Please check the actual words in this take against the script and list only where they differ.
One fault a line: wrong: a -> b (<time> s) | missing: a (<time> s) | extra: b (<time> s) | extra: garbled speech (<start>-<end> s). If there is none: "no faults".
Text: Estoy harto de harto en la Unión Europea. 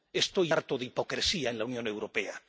wrong: harto -> hipocresía (0.8 s)